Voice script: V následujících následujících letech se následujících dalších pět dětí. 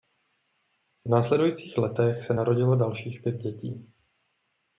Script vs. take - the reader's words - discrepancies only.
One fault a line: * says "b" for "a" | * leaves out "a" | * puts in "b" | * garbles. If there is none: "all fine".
* leaves out "následujících"
* says "narodilo" for "následujících"